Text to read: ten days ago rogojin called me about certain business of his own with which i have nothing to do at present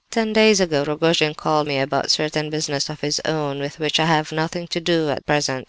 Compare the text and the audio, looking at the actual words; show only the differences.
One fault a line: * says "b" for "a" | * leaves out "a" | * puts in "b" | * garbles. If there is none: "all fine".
all fine